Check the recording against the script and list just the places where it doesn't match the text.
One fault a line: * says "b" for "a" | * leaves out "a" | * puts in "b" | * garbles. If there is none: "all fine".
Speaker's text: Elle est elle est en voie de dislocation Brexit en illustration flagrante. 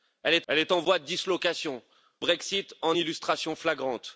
all fine